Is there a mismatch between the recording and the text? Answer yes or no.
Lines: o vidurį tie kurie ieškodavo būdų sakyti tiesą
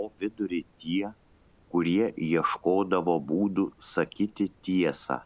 no